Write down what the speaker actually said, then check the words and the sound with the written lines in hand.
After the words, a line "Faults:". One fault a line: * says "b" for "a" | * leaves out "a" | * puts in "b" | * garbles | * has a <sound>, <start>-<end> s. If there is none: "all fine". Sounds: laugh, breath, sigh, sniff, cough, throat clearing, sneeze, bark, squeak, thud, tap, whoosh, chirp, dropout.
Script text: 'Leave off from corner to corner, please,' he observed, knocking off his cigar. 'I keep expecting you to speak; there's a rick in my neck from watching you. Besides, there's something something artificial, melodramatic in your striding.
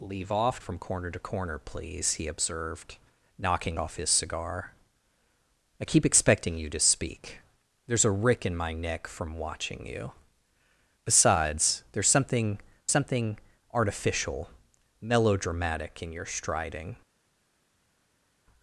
'Leave off from corner to corner, please,' he observed, knocking off his cigar. 'I keep expecting you to speak; there's a rick in my neck from watching you. Besides, there's something something artificial, melodramatic in your striding.
Faults:
all fine